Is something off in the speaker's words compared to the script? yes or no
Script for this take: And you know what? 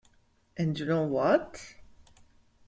no